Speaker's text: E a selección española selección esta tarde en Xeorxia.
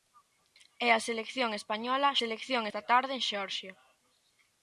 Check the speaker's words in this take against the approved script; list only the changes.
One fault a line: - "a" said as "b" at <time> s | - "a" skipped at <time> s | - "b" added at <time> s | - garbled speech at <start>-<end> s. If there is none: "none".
none